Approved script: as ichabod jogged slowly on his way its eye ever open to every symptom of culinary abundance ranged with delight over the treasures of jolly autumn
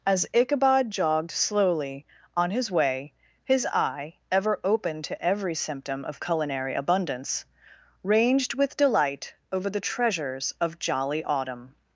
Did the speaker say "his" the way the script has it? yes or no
yes